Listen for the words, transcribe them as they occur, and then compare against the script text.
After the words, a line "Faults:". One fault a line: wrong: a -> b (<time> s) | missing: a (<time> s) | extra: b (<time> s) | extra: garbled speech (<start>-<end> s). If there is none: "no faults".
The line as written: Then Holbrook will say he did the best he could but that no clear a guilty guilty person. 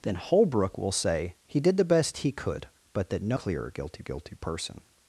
Then Holbrook will say he did the best he could but that no clear a guilty guilty person.
Faults:
no faults